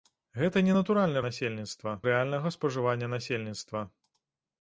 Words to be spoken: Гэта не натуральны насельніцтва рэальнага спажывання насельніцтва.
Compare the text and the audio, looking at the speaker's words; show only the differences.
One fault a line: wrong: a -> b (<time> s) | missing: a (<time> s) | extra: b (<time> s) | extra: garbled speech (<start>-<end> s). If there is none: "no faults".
no faults